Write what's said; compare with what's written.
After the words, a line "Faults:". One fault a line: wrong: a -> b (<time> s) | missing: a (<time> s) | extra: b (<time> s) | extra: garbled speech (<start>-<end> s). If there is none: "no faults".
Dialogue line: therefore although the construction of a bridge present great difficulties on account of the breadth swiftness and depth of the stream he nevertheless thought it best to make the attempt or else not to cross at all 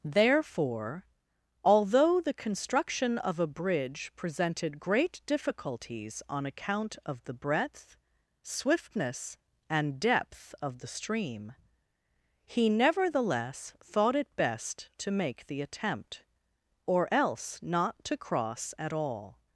therefore although the construction of a bridge presented great difficulties on account of the breadth swiftness and depth of the stream he nevertheless thought it best to make the attempt or else not to cross at all
Faults:
wrong: present -> presented (4.2 s)